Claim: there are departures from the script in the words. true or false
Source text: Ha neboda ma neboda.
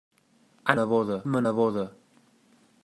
false